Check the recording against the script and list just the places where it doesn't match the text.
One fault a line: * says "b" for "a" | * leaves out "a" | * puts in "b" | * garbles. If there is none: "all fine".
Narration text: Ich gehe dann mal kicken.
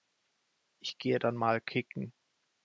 all fine